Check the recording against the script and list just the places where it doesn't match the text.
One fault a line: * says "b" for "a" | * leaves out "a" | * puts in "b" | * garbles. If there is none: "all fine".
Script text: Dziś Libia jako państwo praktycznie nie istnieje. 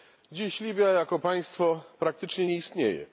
all fine